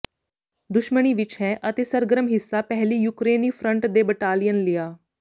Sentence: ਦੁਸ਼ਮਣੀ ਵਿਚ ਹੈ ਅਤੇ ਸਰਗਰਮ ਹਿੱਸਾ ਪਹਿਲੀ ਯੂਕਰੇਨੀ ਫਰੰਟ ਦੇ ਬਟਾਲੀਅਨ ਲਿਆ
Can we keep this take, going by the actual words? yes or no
yes